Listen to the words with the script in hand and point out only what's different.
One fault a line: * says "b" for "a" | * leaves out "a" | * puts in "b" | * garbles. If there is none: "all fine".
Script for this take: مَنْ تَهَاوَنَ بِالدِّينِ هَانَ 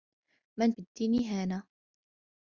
* leaves out "تَهَاوَنَ"